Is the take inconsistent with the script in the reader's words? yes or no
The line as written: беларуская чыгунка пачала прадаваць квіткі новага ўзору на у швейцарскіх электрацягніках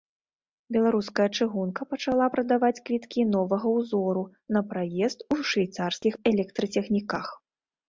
yes